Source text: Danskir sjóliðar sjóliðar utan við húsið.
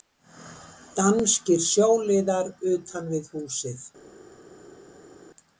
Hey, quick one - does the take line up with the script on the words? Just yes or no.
no